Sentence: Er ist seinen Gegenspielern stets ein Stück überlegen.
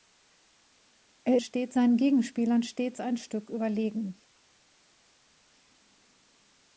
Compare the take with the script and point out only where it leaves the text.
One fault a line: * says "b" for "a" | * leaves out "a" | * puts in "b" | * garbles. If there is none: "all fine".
* says "stets" for "ist"